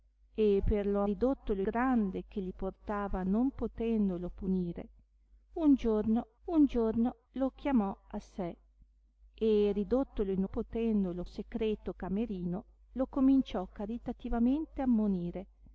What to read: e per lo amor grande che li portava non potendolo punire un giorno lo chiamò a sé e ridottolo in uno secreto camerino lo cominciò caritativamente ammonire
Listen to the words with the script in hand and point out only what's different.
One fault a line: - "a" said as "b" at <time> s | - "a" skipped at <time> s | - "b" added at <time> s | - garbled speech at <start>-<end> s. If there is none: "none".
- "amor" said as "ridottolo" at 1.0 s
- "un giorno" added at 6.5 s
- "uno" said as "potendolo" at 10.5 s